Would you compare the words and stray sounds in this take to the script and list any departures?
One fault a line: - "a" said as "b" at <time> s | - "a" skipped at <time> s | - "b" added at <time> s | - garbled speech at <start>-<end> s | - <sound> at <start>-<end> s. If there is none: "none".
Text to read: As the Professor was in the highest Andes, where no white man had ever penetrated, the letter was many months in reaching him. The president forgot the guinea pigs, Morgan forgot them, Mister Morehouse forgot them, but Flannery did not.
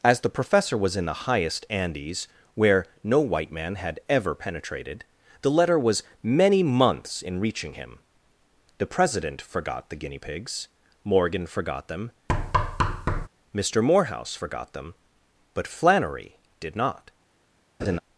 - thud at 12.3-13.3 s
- laugh at 17.8-18.0 s